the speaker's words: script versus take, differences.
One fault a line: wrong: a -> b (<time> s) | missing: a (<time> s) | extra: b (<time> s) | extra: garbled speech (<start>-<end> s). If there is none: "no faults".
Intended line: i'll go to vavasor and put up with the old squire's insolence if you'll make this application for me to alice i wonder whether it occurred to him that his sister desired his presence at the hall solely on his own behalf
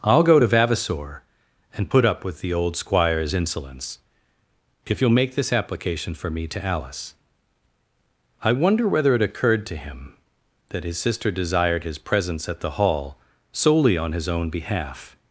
no faults